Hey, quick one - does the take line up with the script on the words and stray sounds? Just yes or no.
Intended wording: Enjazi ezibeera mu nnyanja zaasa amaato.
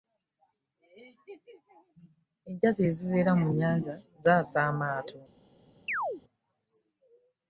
no